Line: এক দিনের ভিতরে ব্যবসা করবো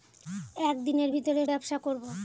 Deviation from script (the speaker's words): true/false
false